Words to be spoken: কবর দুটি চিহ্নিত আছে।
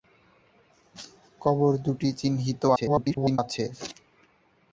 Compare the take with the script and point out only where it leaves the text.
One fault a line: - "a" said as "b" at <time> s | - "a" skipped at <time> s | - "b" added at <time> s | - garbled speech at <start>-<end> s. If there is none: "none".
- garbled speech at 2.8-3.4 s